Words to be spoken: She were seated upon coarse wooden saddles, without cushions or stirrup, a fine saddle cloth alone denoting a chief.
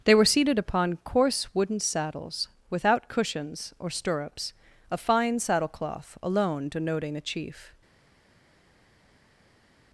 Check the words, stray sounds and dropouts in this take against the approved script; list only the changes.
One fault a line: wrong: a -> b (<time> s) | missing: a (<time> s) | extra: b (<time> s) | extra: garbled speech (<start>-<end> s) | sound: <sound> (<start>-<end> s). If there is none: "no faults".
wrong: She -> They (0.0 s)
wrong: stirrup -> stirrups (3.9 s)